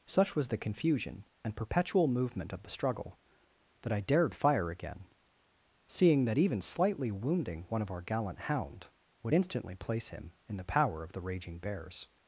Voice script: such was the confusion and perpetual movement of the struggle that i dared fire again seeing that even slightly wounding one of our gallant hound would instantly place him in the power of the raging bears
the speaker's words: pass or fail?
pass